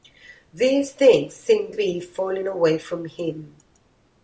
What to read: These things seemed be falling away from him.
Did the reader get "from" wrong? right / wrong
right